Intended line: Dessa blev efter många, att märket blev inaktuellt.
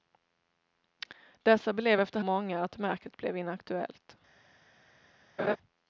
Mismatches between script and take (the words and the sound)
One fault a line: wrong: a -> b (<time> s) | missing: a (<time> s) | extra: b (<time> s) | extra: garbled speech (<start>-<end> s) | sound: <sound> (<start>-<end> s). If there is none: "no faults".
sound: laugh (5.4-5.6 s)